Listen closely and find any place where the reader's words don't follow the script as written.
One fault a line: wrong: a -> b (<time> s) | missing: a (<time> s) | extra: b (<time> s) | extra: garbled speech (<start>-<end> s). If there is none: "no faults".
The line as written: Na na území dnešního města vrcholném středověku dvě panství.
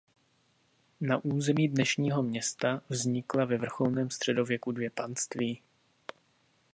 missing: na (1.2 s)
extra: vznikla ve (2.9 s)